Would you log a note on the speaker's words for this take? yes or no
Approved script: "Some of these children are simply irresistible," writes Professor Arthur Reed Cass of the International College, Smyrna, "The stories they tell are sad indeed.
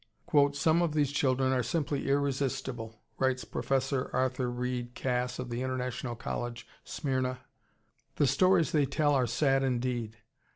no